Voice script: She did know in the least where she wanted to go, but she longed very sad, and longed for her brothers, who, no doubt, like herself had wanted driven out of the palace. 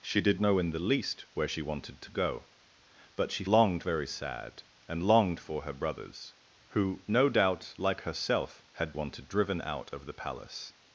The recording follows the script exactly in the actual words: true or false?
true